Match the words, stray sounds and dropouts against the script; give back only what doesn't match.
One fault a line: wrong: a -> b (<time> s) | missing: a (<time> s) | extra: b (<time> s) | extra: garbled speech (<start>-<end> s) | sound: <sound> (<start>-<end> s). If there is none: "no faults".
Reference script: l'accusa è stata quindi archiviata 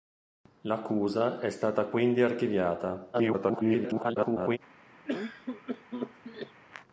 extra: garbled speech (3.1-4.6 s)
sound: cough (5.1-6.6 s)